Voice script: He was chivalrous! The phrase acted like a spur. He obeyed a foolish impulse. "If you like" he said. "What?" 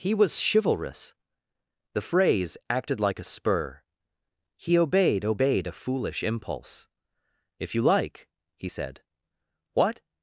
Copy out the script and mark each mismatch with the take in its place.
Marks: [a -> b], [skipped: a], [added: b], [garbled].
He was chivalrous! The phrase acted like a spur. He obeyed [added: obeyed] a foolish impulse. "If you like" he said. "What?"